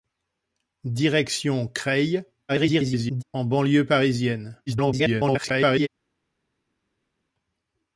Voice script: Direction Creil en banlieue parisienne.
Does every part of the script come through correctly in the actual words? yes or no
no